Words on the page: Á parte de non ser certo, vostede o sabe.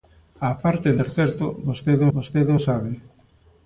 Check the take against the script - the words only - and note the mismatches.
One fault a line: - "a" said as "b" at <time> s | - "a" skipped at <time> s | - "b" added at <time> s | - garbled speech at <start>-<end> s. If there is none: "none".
- "non" skipped at 1.0 s
- "vostede" added at 2.2 s